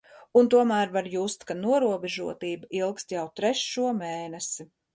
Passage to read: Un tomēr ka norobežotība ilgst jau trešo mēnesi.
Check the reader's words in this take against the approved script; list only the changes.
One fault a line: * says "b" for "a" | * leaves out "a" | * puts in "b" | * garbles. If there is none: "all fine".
* puts in "var just"